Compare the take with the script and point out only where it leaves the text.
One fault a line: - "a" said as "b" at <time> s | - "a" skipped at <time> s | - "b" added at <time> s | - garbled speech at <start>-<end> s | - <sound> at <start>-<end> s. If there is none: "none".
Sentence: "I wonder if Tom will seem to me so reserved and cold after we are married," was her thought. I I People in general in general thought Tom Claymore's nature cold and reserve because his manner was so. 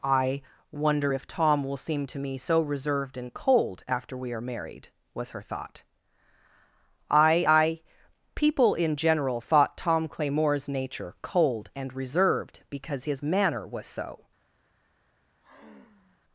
- "in general" skipped at 9.4 s
- "reserve" said as "reserved" at 11.9 s
- sigh at 15.4-16.2 s